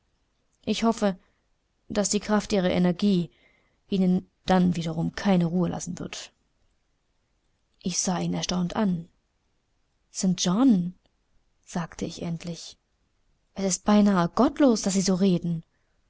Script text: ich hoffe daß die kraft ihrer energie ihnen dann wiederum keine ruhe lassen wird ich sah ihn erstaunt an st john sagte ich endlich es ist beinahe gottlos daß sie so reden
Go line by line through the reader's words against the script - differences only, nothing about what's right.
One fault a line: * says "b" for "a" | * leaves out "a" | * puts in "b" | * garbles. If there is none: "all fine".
all fine